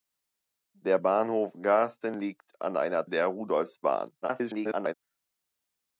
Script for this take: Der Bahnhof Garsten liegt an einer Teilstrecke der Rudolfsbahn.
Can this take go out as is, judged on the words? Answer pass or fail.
fail